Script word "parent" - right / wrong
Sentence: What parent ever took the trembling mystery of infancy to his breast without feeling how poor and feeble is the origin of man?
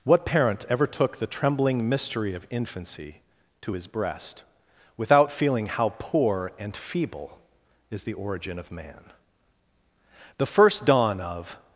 right